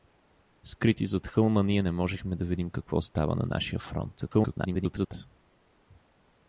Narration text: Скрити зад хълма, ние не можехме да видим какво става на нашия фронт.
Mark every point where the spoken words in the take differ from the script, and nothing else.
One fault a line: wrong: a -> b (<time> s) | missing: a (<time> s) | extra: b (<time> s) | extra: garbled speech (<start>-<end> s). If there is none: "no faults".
extra: garbled speech (4.2-5.1 s)